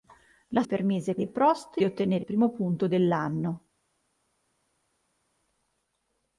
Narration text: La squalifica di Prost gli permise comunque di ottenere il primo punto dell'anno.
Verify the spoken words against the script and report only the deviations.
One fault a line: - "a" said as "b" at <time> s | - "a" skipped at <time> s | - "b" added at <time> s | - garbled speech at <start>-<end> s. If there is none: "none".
- "squalifica" said as "permise" at 0.6 s
- "gli permise comunque" skipped at 1.8 s
- "il" skipped at 2.3 s